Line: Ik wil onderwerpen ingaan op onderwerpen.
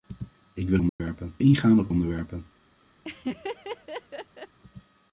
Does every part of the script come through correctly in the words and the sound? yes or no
no